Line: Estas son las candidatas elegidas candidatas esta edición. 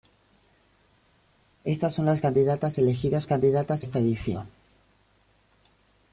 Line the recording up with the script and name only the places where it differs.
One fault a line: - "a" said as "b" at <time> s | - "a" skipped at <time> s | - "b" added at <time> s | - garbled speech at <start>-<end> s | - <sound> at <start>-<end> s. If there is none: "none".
none